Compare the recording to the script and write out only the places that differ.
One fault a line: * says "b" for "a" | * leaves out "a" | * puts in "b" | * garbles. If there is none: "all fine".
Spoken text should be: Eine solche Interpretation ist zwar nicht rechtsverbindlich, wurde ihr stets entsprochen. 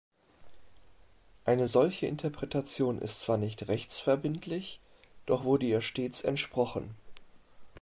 * puts in "doch"